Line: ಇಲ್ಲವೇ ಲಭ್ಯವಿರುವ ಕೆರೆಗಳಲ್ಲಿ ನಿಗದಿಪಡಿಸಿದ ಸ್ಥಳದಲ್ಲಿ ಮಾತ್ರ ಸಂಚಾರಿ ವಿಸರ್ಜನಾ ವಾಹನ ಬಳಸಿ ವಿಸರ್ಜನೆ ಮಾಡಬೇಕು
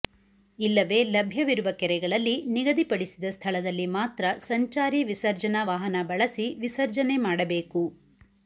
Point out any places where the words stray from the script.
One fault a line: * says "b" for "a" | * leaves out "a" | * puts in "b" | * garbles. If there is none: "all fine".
all fine